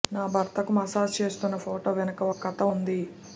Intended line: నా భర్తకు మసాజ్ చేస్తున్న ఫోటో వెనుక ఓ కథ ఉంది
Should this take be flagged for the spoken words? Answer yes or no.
no